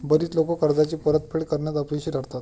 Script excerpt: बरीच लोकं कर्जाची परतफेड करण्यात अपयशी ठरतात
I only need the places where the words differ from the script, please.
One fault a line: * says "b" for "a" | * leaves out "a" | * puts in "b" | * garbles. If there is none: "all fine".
all fine